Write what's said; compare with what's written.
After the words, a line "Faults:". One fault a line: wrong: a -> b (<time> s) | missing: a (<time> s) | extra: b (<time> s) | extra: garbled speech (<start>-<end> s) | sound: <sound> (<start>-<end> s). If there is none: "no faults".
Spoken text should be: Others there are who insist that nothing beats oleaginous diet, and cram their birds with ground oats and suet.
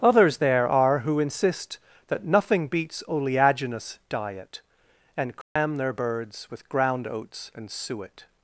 Others there are who insist that nothing beats oleaginous diet, and cram their birds with ground oats and suet.
Faults:
sound: dropout (5.4-5.6 s)